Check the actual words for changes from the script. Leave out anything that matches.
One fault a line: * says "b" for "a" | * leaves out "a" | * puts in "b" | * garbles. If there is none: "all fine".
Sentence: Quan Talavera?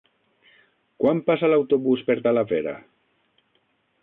* puts in "passa l'autobús per"